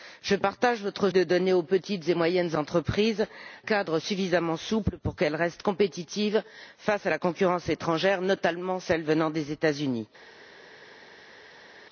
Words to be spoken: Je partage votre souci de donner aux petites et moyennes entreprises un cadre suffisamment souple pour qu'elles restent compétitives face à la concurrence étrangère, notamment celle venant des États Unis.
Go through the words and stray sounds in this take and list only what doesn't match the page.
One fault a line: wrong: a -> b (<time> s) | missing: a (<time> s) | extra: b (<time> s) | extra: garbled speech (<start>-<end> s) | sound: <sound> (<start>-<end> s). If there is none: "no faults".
missing: souci (1.1 s)
missing: un (3.3 s)